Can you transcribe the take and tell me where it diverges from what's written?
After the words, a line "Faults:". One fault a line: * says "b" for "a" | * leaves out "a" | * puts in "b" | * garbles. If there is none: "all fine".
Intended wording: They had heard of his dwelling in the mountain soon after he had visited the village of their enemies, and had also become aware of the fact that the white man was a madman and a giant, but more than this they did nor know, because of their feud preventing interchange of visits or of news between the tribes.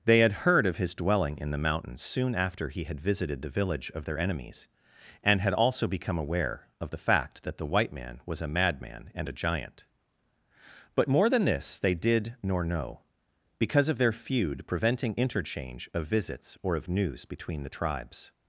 They had heard of his dwelling in the mountain soon after he had visited the village of their enemies, and had also become aware of the fact that the white man was a madman and a giant, but more than this they did nor know, because of their feud preventing interchange of visits or of news between the tribes.
Faults:
all fine